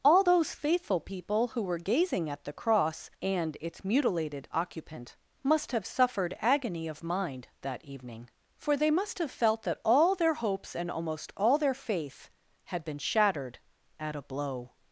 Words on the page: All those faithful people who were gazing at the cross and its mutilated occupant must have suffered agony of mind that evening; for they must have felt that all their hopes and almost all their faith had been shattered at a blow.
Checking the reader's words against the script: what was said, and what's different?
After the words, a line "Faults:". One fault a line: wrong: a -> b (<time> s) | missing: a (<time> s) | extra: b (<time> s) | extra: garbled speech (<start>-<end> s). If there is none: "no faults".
All those faithful people who were gazing at the cross and its mutilated occupant must have suffered agony of mind that evening; for they must have felt that all their hopes and almost all their faith had been shattered at a blow.
Faults:
no faults